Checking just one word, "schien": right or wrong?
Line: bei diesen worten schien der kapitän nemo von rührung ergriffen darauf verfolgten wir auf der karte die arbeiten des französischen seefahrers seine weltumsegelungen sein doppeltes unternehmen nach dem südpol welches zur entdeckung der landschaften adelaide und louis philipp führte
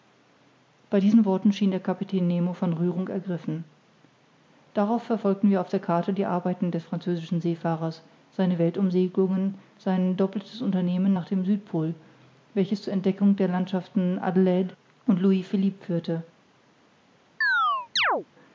right